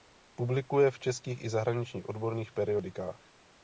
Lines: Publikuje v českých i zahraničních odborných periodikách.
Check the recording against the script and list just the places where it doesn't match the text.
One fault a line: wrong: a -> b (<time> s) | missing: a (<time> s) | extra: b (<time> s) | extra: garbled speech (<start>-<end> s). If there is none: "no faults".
no faults